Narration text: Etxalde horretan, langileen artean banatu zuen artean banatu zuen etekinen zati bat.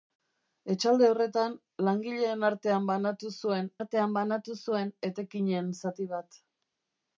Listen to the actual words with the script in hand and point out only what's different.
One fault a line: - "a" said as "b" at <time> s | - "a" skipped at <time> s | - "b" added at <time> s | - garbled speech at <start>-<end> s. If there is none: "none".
none